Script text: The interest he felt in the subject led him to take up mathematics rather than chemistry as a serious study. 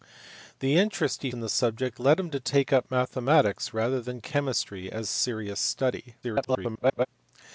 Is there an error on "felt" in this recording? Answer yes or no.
yes